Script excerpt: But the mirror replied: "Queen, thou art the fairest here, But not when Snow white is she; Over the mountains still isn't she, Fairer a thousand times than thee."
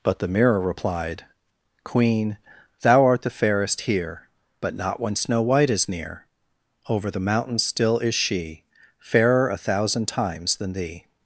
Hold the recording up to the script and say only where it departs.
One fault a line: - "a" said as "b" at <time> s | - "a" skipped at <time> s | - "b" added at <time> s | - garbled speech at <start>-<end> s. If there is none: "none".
- "she" said as "near" at 5.9 s
- "isn't" said as "is" at 8.0 s